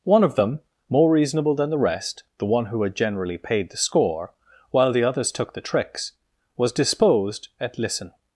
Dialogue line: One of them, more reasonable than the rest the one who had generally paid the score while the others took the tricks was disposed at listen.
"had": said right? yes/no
yes